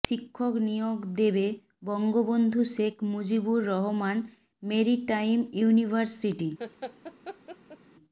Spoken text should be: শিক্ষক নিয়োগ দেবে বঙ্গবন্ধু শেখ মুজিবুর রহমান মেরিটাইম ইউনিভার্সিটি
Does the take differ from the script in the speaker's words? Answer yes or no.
no